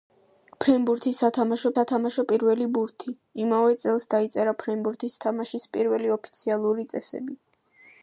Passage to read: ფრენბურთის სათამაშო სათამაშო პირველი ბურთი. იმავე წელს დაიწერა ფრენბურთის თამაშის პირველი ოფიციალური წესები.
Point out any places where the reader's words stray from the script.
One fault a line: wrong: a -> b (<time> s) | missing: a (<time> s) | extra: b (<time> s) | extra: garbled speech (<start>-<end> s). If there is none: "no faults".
no faults